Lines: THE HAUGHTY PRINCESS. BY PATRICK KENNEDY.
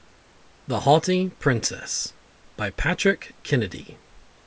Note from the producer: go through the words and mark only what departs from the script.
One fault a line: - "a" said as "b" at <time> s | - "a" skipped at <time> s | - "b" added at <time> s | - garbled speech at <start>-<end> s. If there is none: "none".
none